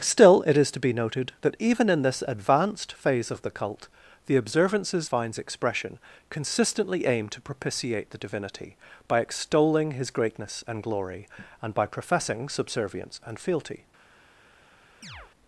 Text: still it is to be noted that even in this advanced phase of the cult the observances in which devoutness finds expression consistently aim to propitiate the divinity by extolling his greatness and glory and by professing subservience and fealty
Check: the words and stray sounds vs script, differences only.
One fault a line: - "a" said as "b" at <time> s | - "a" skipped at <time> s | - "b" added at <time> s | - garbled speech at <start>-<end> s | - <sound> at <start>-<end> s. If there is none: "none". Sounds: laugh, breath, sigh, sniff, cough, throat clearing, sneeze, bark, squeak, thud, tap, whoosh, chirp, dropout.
- "in which devoutness" skipped at 5.1 s
- chirp at 15.0-15.3 s